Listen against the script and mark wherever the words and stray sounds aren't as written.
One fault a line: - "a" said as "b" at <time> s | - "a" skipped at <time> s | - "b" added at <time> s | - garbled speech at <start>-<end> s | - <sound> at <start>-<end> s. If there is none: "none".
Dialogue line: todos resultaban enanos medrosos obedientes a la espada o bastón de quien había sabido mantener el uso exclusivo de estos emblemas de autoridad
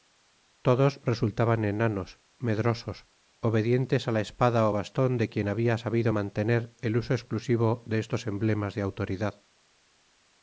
none